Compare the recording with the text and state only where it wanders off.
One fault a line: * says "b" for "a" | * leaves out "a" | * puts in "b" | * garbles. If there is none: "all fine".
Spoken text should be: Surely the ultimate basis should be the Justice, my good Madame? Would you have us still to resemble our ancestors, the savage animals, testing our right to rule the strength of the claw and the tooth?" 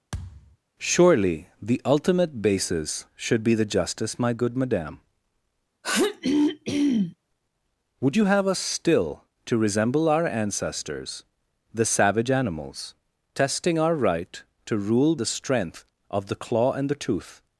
all fine